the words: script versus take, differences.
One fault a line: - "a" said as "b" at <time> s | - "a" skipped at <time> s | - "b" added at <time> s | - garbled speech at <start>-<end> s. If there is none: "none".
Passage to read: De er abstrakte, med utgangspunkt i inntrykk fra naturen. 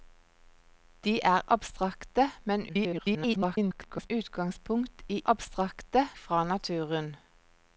- garbled speech at 2.7-4.1 s
- "inntrykk" said as "abstrakte" at 5.2 s